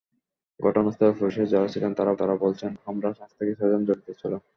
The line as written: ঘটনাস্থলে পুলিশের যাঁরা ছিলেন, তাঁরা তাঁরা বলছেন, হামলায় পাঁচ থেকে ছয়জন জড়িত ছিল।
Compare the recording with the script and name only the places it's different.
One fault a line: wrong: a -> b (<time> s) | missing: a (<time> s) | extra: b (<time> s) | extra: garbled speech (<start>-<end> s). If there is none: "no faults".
no faults